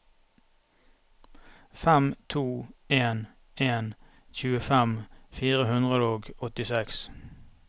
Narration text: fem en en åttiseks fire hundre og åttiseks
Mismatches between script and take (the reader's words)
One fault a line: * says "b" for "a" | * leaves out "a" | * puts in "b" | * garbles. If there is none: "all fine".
* puts in "to"
* says "tjuefem" for "åttiseks"